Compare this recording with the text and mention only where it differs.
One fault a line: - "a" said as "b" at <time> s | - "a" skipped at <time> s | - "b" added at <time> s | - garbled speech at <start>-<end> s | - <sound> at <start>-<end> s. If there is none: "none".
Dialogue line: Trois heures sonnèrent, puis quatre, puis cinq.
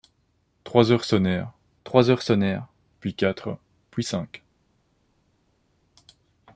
- "trois heures sonnèrent" added at 1.8 s